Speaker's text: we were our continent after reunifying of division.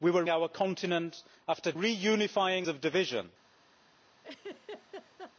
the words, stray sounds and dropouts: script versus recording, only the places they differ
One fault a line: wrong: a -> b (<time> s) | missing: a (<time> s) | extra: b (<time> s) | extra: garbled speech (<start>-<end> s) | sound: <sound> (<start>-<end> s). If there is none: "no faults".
sound: laugh (4.2-5.3 s)